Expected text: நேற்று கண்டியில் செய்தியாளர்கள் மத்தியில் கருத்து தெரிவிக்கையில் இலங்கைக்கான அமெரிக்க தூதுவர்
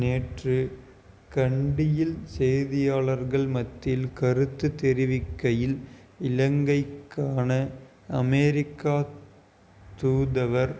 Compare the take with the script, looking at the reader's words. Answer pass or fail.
pass